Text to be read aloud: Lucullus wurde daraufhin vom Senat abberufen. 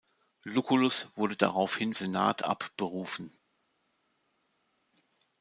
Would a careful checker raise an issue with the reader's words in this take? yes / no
yes